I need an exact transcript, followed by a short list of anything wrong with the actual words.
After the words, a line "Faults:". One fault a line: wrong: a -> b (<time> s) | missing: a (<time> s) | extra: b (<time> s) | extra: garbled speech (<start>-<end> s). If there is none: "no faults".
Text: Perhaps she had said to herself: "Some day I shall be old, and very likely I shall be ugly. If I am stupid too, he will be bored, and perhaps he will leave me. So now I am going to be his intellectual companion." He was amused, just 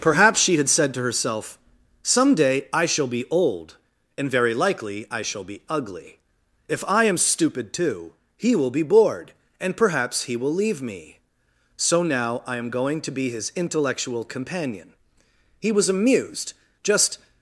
Perhaps she had said to herself: "Some day I shall be old, and very likely I shall be ugly. If I am stupid too, he will be bored, and perhaps he will leave me. So now I am going to be his intellectual companion." He was amused, just
Faults:
no faults